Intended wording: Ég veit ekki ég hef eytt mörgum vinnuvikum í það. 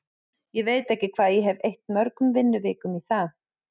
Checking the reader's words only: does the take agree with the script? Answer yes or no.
no